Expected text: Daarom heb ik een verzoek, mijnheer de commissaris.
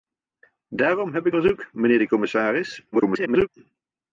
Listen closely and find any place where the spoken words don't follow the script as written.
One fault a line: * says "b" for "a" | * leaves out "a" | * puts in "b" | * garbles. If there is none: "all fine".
* leaves out "een"
* garbles